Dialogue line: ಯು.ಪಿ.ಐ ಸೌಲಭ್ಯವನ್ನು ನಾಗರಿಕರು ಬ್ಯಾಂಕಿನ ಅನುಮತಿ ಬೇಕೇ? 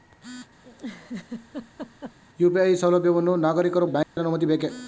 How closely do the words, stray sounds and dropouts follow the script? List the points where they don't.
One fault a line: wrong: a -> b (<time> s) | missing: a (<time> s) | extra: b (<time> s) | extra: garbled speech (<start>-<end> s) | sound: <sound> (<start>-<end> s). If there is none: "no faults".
sound: laugh (0.6-2.2 s)
sound: dropout (4.0-4.2 s)